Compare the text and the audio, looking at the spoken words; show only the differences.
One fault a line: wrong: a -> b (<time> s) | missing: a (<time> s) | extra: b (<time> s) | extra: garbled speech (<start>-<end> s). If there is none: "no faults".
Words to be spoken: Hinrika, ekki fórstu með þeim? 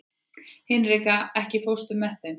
no faults